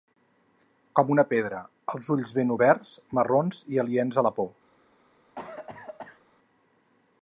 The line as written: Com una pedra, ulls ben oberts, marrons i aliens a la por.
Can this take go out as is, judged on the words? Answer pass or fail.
fail